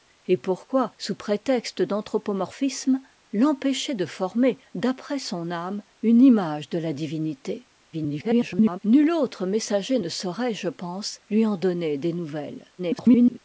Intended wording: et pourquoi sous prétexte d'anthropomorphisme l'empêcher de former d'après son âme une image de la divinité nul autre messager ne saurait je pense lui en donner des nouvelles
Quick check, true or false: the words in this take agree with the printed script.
false